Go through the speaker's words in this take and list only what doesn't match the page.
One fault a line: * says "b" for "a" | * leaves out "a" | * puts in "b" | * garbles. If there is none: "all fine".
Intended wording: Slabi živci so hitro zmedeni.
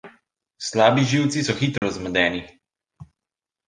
all fine